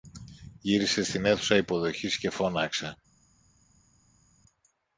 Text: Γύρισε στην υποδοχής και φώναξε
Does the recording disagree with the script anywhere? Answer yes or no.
yes